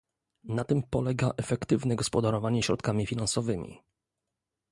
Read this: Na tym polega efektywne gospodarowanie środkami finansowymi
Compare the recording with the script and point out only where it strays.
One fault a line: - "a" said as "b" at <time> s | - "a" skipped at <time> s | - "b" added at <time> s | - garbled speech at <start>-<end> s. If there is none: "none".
none